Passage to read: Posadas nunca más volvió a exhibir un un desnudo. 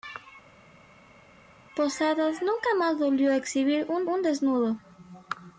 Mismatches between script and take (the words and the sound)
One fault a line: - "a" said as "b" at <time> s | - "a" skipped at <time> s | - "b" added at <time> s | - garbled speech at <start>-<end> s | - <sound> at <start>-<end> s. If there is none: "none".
none